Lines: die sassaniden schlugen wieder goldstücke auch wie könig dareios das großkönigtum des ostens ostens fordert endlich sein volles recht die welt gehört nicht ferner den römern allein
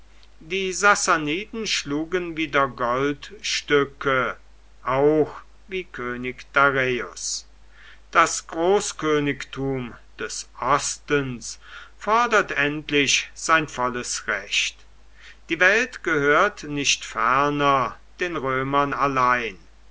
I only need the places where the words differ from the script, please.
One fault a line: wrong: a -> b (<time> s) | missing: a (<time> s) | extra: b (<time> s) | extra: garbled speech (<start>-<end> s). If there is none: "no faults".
missing: ostens (11.6 s)